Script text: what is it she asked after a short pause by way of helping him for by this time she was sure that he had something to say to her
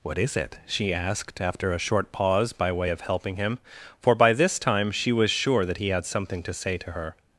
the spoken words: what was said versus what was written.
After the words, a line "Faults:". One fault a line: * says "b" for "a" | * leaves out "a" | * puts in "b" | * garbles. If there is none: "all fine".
what is it she asked after a short pause by way of helping him for by this time she was sure that he had something to say to her
Faults:
all fine